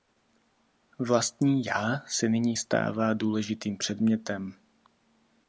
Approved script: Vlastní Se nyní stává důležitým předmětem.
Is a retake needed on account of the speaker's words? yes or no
yes